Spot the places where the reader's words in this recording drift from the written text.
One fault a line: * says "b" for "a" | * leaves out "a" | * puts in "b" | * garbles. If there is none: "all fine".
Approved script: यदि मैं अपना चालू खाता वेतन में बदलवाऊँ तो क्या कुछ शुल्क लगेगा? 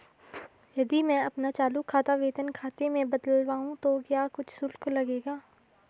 * puts in "खाते"